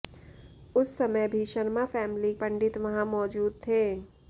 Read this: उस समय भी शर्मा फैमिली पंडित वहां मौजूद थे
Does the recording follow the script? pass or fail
pass